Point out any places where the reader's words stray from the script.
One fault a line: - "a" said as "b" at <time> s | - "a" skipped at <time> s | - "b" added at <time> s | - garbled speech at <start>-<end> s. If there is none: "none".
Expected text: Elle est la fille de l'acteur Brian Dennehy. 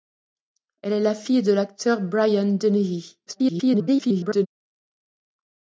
- garbled speech at 3.3-4.5 s